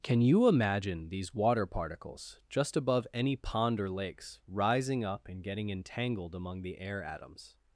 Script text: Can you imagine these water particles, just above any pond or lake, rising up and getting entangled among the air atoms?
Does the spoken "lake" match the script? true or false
false